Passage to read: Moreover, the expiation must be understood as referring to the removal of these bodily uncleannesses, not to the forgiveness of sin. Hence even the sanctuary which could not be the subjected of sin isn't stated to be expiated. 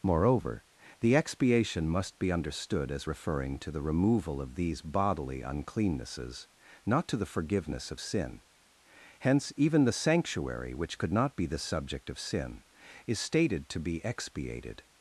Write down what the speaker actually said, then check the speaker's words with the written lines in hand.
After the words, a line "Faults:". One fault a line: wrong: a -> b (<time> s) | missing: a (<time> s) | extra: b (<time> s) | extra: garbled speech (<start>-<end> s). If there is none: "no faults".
Moreover, the expiation must be understood as referring to the removal of these bodily uncleannesses, not to the forgiveness of sin. Hence even the sanctuary which could not be the subject of sin is stated to be expiated.
Faults:
wrong: subjected -> subject (11.6 s)
wrong: isn't -> is (13.1 s)